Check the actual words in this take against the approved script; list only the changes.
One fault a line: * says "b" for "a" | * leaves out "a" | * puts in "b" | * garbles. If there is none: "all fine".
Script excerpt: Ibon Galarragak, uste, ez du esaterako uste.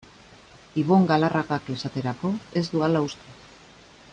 * says "esaterako" for "uste"
* says "hala" for "esaterako"